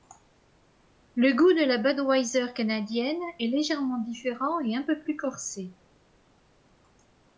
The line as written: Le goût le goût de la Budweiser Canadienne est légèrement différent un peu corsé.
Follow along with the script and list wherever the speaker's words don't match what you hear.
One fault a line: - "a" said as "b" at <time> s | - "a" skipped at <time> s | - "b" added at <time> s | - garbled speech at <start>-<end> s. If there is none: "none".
- "le goût" skipped at 1.5 s
- "et" added at 4.6 s
- "plus" added at 5.0 s